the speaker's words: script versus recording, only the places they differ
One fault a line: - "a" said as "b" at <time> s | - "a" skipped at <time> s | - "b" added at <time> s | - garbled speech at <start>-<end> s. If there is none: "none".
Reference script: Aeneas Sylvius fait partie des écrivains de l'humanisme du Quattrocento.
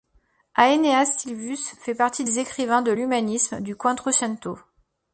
none